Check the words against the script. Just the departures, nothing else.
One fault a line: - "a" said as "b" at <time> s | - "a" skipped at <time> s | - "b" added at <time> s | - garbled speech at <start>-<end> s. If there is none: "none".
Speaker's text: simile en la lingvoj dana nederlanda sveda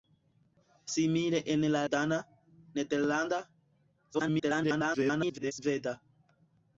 - "lingvoj" skipped at 1.8 s
- garbled speech at 4.1-5.5 s